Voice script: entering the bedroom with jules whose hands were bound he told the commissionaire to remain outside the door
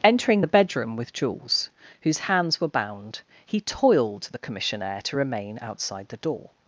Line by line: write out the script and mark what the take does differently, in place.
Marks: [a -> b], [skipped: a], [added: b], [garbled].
entering the bedroom with jules whose hands were bound he [told -> toiled] the commissionaire to remain outside the door